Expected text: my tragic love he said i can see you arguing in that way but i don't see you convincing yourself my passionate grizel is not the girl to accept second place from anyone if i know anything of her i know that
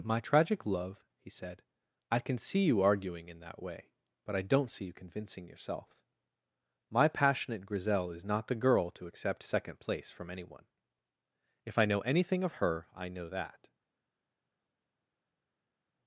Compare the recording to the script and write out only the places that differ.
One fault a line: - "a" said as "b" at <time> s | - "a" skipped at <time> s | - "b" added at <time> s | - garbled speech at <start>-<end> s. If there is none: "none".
none